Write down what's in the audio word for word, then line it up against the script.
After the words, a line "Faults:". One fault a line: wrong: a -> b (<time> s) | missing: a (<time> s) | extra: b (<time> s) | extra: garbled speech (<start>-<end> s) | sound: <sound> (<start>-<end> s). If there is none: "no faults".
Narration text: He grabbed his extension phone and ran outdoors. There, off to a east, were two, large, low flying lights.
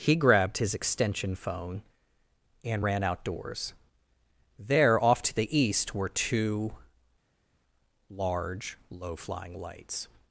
He grabbed his extension phone and ran outdoors. There, off to the east, were two, large, low flying lights.
Faults:
wrong: a -> the (5.3 s)